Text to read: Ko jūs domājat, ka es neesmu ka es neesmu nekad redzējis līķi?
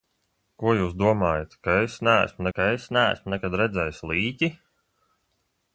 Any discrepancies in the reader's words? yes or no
no